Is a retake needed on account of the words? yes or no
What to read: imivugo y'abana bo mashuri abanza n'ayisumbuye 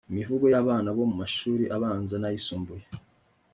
no